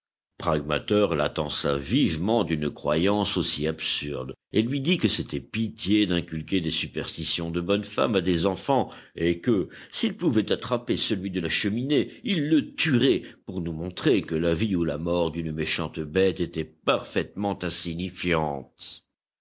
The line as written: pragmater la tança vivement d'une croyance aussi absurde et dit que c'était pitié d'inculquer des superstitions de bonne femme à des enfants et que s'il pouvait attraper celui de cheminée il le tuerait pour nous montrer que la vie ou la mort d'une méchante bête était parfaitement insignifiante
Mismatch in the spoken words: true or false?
true